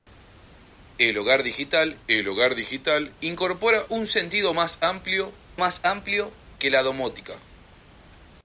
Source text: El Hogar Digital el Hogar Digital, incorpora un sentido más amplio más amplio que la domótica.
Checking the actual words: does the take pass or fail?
pass